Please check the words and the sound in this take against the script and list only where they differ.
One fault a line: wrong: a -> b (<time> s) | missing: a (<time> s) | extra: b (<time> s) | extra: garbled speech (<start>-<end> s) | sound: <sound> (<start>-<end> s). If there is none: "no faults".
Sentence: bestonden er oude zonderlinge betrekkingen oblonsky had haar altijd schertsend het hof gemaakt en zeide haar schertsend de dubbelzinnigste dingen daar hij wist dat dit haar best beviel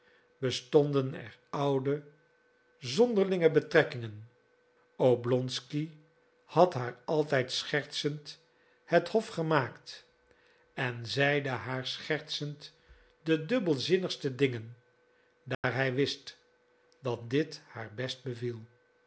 sound: dropout (15.5-15.6 s)